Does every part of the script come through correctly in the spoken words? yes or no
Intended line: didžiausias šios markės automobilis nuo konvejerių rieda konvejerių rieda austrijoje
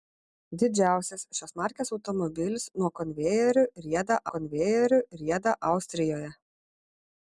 yes